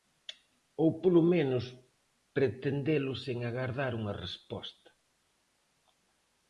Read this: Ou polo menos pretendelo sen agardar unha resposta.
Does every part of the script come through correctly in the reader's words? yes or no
yes